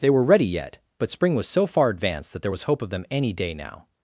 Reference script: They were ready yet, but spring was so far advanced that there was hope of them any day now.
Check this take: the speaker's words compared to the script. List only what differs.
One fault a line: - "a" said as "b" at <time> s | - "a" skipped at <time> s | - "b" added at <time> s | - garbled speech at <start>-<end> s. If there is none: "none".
none